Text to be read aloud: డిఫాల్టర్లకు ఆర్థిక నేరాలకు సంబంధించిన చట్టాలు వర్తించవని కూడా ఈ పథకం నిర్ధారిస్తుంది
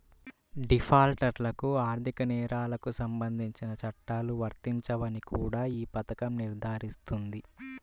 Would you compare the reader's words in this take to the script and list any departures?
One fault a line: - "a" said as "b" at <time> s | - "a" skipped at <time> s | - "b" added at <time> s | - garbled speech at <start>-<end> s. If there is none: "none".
none